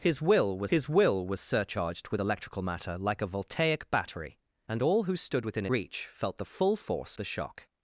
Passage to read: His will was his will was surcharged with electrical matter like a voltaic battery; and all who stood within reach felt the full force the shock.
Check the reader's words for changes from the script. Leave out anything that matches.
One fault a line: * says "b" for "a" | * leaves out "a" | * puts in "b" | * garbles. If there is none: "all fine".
all fine